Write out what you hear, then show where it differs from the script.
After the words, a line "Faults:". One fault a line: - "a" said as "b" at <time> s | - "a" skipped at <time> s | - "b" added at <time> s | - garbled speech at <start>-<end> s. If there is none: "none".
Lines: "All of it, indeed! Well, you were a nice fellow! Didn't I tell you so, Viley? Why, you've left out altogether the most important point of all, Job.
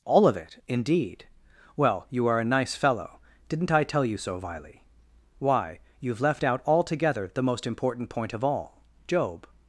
"All of it, indeed! Well, you are a nice fellow! Didn't I tell you so, Viley? Why, you've left out altogether the most important point of all, Job.
Faults:
- "were" said as "are" at 2.2 s